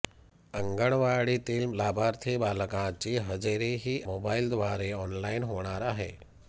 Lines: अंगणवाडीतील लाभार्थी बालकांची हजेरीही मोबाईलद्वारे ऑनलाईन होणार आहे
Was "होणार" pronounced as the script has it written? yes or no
yes